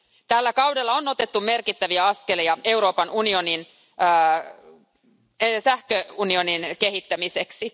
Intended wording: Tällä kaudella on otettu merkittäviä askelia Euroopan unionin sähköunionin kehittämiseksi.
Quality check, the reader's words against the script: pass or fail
pass